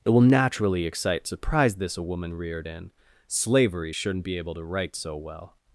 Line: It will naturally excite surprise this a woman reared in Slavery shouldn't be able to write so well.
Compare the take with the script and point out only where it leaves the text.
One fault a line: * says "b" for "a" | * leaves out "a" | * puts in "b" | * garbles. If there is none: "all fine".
all fine